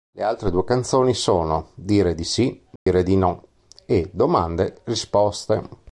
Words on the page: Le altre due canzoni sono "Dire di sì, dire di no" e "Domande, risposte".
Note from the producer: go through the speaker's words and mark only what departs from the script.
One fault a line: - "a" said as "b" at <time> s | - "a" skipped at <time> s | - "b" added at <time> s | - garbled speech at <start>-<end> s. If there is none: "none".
none